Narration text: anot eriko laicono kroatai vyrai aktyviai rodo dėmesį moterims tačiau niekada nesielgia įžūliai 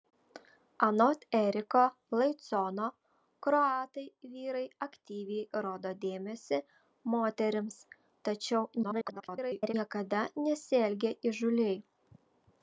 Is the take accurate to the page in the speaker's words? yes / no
no